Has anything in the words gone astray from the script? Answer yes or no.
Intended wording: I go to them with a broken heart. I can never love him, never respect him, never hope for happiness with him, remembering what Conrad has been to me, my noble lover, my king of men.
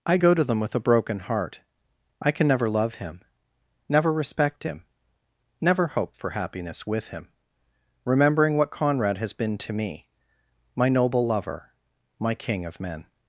no